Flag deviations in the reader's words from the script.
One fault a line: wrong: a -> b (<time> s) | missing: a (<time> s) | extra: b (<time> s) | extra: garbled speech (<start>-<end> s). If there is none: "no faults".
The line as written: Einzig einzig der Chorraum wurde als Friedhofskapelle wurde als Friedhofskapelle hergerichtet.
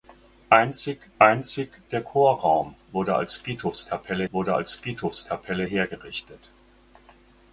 no faults